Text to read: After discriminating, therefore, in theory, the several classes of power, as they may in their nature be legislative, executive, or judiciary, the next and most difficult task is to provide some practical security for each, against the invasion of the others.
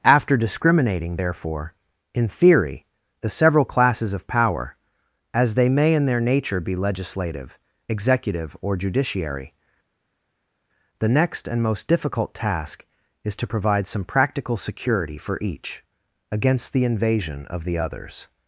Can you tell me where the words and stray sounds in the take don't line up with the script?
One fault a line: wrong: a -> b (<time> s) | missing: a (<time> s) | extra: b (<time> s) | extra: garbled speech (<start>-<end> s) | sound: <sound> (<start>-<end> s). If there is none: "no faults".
no faults